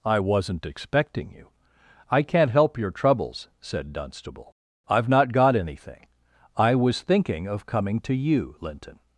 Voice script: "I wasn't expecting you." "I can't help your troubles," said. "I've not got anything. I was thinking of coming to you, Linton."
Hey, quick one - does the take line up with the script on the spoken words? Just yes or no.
no